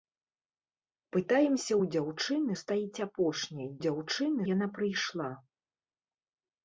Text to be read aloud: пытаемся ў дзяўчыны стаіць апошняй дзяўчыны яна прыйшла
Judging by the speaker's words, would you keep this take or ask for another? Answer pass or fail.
pass